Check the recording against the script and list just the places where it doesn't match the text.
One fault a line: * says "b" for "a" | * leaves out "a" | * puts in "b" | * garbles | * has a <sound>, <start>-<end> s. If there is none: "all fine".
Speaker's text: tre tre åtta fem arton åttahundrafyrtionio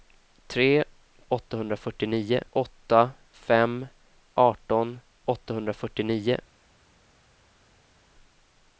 * says "åttahundrafyrtionio" for "tre"